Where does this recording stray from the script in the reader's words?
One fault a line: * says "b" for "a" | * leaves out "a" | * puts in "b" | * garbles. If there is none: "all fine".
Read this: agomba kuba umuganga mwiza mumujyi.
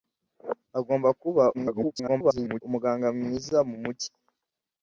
* garbles